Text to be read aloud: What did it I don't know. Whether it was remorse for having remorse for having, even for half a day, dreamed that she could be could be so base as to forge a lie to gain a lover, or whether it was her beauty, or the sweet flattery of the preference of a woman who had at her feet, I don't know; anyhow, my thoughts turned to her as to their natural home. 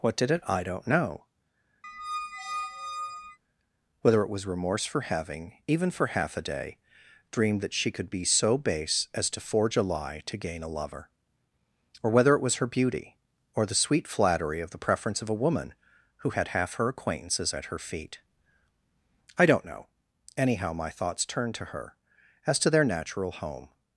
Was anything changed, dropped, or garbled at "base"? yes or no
no